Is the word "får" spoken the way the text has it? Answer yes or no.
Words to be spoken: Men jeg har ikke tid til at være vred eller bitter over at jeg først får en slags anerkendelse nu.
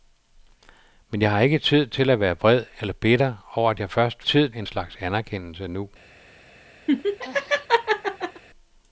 no